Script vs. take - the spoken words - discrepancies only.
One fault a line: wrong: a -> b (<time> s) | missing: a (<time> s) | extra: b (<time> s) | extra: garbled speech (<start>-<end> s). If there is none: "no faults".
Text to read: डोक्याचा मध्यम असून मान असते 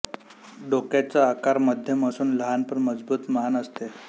extra: आकार (1.3 s)
extra: लहान पण मजबूत (2.4 s)